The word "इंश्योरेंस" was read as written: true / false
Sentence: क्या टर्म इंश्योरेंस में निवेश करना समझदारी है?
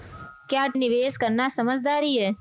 false